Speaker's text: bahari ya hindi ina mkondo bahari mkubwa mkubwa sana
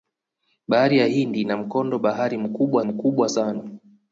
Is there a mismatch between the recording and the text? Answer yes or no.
no